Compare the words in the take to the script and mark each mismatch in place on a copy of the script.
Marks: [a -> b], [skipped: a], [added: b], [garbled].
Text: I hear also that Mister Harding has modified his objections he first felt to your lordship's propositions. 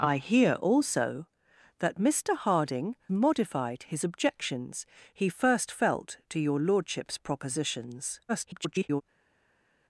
I hear also that Mister Harding [skipped: has] modified his objections he first felt to your lordship's propositions. [garbled]